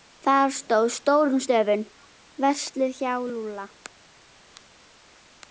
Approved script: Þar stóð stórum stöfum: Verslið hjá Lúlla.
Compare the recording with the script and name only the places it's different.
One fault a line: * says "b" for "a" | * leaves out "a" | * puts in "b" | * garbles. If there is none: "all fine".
all fine